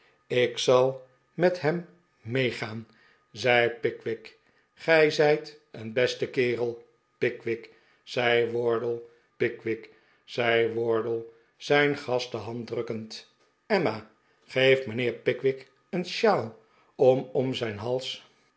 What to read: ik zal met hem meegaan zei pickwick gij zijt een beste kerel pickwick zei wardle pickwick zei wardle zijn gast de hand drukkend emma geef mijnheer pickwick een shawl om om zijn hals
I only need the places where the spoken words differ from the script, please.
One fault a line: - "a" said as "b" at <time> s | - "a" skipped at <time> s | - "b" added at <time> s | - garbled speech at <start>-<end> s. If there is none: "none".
none